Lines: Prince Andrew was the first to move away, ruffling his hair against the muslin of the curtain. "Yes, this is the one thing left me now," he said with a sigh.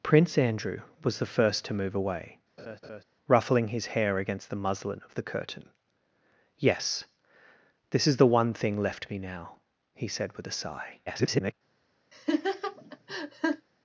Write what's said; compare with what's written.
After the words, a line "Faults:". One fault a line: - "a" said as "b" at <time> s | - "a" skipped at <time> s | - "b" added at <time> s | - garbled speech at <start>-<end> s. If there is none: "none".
Prince Andrew was the first to move away, ruffling his hair against the muslin of the curtain. "Yes, this is the one thing left me now," he said with a sigh. [garbled]
Faults:
- garbled speech at 11.1-11.5 s